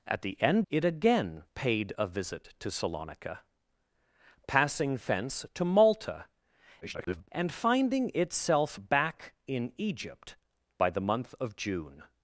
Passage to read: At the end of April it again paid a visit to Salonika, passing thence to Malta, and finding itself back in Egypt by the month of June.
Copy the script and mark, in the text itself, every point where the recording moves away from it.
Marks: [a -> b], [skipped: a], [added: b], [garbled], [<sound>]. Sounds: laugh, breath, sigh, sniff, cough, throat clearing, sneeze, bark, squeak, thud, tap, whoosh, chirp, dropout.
At the end [skipped: of April] it again paid a visit to Salonika, passing thence to Malta, [garbled] and finding itself back in Egypt by the month of June.